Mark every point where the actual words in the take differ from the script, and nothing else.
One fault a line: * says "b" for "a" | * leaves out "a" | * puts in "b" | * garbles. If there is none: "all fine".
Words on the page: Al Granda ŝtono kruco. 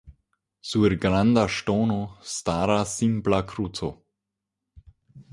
* says "Sur" for "Al"
* puts in "staras simpla"